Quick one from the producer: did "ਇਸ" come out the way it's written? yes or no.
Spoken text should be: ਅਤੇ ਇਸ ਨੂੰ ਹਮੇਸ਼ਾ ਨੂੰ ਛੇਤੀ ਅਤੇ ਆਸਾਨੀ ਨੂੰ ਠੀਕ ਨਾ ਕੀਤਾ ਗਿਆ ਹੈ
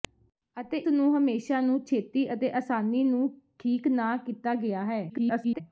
no